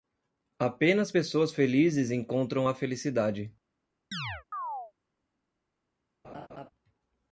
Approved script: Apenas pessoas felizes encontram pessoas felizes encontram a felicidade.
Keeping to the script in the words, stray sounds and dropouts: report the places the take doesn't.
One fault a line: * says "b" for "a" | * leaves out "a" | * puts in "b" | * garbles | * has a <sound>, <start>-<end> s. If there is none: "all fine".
* leaves out "pessoas felizes encontram"
* has a chirp, 4.1-4.9 s
* has a laugh, 6.2-6.7 s